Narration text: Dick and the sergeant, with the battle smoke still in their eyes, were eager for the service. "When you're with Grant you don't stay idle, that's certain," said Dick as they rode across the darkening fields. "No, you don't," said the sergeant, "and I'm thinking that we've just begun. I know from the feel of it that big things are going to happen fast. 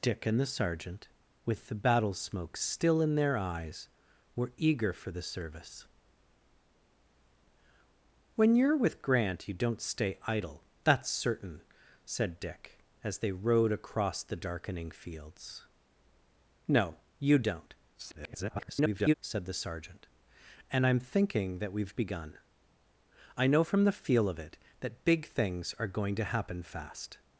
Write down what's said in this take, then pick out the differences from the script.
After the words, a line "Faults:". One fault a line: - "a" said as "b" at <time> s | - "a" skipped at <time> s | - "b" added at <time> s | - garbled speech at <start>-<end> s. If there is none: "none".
Dick and the sergeant, with the battle smoke still in their eyes, were eager for the service. "When you're with Grant you don't stay idle, that's certain," said Dick as they rode across the darkening fields. "No, you don't," [garbled] said the sergeant, "and I'm thinking that we've begun. I know from the feel of it that big things are going to happen fast.
Faults:
- garbled speech at 17.9-19.1 s
- "just" skipped at 21.9 s